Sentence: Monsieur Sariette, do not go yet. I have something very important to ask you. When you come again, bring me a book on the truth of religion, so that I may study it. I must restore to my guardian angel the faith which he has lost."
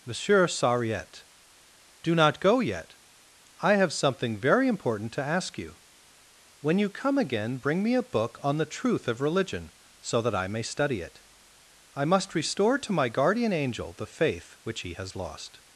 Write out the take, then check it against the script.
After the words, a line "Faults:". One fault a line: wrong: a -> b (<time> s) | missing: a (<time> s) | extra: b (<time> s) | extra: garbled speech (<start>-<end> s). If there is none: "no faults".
Monsieur Sariette, do not go yet. I have something very important to ask you. When you come again, bring me a book on the truth of religion, so that I may study it. I must restore to my guardian angel the faith which he has lost."
Faults:
no faults